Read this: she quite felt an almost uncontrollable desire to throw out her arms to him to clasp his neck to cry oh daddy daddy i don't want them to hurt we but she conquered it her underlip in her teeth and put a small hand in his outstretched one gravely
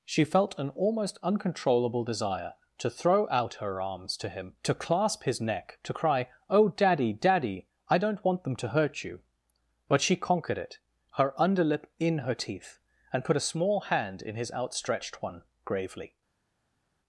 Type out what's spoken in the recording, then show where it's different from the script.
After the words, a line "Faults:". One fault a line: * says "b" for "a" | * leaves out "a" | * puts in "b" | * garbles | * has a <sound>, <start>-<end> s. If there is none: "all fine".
she felt an almost uncontrollable desire to throw out her arms to him to clasp his neck to cry oh daddy daddy i don't want them to hurt you but she conquered it her underlip in her teeth and put a small hand in his outstretched one gravely
Faults:
* leaves out "quite"
* says "you" for "we"